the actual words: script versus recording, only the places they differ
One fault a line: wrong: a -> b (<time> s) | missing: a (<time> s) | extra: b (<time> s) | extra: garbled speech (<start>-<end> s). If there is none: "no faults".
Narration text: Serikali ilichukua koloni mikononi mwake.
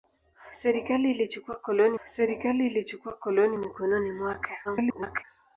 extra: serikali ilichukua koloni (2.0 s)
extra: garbled speech (4.6-5.2 s)